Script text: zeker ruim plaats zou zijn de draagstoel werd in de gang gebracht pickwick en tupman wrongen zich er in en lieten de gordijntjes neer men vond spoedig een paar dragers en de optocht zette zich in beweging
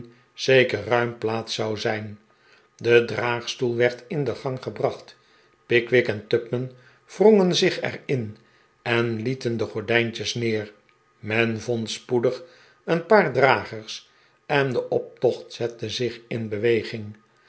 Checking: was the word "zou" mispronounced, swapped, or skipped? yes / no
no